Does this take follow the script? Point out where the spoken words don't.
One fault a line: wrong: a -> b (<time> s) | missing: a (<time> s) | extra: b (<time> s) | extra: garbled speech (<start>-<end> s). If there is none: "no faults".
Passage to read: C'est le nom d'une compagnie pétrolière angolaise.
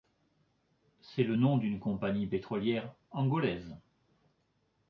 no faults